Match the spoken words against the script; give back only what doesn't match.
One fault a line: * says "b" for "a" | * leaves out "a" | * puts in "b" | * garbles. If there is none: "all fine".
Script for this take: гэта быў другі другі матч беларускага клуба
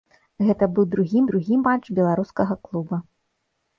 all fine